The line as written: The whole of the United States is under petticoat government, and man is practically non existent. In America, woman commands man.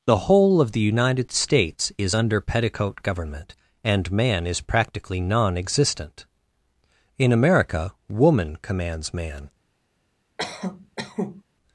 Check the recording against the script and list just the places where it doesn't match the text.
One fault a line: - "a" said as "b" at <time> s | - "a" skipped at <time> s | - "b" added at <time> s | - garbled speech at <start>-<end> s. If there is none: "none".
none